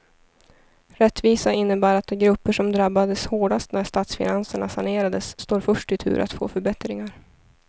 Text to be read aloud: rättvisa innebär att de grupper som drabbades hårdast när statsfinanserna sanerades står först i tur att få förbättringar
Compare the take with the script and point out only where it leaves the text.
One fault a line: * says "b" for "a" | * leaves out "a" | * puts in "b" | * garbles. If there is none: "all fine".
all fine